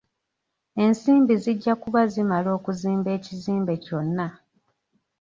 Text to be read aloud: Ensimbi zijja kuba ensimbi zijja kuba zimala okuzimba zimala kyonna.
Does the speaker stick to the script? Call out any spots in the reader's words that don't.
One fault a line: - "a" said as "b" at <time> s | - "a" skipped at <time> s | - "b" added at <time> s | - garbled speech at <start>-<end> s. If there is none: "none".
- "ensimbi zijja kuba" skipped at 2.0 s
- "zimala" said as "ekizimbe" at 3.2 s